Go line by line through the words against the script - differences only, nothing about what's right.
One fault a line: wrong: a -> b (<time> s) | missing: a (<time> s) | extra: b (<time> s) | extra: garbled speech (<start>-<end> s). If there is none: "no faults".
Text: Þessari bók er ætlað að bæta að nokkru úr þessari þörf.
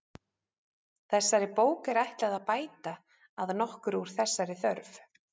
no faults